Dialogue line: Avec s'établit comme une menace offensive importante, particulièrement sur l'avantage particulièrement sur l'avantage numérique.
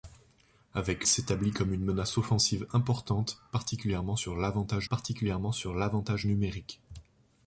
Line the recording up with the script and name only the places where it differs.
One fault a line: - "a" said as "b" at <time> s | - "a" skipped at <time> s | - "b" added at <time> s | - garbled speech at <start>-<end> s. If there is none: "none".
none